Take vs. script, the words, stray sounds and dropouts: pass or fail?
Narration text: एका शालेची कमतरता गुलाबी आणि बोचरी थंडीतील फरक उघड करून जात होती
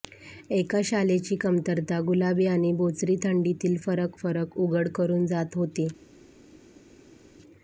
fail